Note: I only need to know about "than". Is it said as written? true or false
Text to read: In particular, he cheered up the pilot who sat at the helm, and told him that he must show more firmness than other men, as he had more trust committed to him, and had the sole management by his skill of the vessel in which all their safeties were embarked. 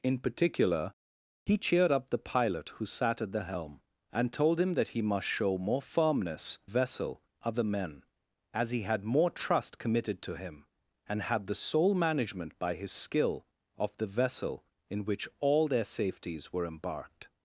false